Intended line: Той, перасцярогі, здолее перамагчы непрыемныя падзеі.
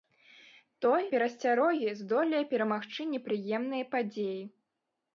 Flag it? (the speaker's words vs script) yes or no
no